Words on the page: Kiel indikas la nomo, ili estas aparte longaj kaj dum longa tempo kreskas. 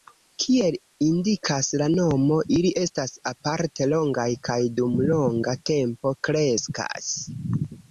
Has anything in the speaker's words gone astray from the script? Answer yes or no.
no